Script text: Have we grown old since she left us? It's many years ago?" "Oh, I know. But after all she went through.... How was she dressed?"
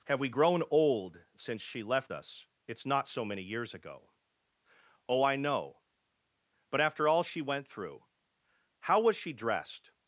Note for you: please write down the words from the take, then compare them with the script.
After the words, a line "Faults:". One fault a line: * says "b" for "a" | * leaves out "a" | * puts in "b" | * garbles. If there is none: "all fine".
Have we grown old since she left us? It's not so many years ago?" "Oh, I know. But after all she went through.... How was she dressed?"
Faults:
* puts in "not so"